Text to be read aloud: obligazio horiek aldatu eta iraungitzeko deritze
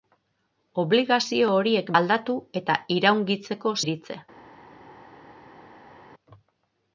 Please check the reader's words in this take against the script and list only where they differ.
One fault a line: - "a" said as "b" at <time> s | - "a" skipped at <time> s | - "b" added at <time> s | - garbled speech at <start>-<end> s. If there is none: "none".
none